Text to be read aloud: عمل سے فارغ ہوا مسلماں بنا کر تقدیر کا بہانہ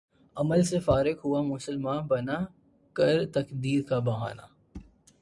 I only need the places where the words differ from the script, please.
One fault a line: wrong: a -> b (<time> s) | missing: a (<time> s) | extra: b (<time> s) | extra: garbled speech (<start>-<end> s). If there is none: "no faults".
no faults